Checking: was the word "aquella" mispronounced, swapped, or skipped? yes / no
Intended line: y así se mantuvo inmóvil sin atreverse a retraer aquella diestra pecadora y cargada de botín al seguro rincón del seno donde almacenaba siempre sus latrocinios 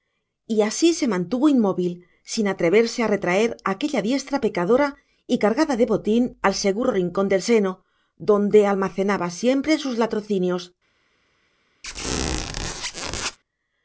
no